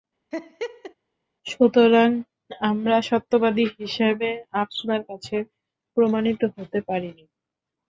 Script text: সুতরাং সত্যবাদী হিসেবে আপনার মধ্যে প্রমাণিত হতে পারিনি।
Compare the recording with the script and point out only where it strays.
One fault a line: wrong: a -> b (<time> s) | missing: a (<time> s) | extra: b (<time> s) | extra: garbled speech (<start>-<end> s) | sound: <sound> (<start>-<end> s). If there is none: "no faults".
sound: laugh (0.3-0.9 s)
extra: আমরা (2.6 s)
wrong: মধ্যে -> কাছে (5.1 s)